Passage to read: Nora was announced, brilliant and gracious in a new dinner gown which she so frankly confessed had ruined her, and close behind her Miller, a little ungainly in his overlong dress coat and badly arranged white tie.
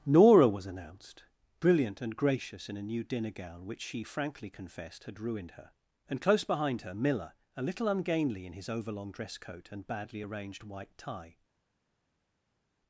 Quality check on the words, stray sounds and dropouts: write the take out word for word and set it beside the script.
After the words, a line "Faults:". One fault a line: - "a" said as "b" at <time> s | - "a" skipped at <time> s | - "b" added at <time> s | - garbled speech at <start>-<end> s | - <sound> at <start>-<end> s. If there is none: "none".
Nora was announced, brilliant and gracious in a new dinner gown which she frankly confessed had ruined her, and close behind her Miller, a little ungainly in his overlong dress coat and badly arranged white tie.
Faults:
- "so" skipped at 4.0 s